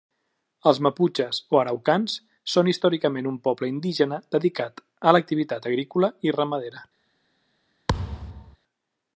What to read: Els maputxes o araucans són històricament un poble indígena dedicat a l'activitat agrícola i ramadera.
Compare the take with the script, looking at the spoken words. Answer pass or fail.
pass